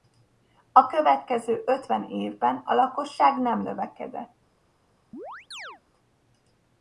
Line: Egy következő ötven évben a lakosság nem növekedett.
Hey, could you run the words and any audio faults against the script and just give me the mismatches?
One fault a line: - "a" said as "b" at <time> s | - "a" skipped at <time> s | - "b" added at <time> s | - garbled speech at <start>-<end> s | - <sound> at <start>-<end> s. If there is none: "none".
- "Egy" said as "A" at 0.7 s
- chirp at 5.1-5.8 s